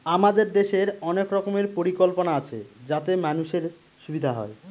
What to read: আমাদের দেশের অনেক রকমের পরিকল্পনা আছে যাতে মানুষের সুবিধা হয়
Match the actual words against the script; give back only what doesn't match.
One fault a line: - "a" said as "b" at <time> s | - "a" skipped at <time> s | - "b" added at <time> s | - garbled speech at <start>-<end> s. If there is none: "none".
none